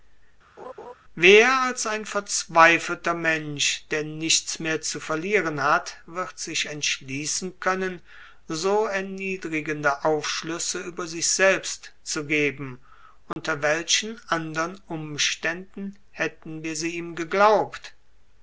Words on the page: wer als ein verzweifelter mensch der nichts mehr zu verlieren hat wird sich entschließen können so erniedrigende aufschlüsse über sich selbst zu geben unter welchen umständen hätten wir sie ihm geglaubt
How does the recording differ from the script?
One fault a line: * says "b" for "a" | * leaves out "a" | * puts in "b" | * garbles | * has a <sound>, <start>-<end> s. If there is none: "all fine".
* has a laugh, 0.6-0.9 s
* has a dropout, 13.3-13.4 s
* puts in "andern"